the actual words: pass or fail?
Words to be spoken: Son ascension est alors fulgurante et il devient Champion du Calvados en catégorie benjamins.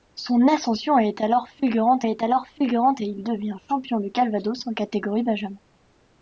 fail